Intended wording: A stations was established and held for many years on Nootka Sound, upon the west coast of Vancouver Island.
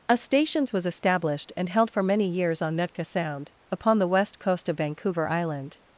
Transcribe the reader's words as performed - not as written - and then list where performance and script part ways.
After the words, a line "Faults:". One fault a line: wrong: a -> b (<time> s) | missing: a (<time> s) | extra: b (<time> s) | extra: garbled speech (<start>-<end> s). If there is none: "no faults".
A stations was established and held for many years on Nootka Sound, upon the west coast of Vancouver Island.
Faults:
no faults